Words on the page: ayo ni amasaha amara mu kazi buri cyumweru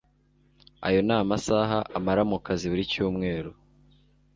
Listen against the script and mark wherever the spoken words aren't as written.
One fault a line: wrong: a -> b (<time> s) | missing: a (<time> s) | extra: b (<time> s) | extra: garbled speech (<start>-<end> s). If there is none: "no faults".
no faults